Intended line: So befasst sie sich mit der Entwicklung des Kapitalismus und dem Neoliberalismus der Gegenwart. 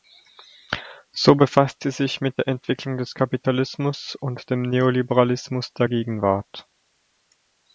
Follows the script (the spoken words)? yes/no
yes